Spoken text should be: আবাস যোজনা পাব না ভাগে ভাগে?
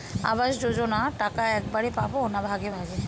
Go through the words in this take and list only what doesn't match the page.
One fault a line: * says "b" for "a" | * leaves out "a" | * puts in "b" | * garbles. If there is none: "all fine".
* puts in "টাকা একবারে"